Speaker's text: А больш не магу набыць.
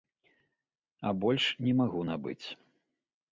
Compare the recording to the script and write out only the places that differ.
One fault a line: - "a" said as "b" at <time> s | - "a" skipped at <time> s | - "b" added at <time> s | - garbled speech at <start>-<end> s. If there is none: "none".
none